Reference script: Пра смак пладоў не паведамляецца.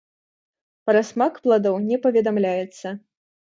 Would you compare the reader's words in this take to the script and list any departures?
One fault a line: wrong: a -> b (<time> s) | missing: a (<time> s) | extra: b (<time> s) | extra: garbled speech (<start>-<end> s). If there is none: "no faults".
no faults